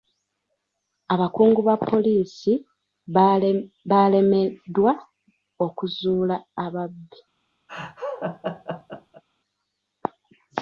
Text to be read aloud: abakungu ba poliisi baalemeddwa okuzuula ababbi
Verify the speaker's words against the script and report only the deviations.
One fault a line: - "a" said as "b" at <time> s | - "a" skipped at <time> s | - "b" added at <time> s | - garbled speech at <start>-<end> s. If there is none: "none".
none